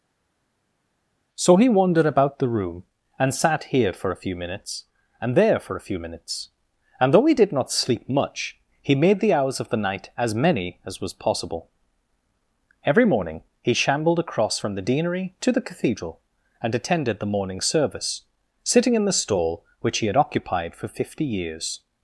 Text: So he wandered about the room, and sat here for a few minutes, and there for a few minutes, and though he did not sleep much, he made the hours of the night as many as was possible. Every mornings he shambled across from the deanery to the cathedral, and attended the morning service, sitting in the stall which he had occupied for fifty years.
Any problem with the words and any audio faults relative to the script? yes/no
yes